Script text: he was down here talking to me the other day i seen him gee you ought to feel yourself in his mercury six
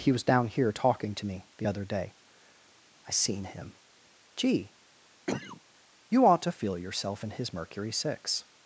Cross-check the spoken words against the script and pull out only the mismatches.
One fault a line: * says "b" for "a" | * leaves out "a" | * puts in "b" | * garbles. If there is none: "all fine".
all fine